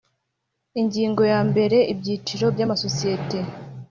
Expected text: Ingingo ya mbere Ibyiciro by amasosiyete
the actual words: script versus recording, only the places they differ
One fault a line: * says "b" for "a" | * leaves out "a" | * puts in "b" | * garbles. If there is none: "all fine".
all fine